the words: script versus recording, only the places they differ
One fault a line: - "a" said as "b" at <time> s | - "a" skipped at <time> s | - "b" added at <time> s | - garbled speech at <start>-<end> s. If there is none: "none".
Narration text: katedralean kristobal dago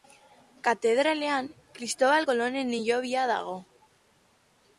- "kolonen hilobia" added at 2.3 s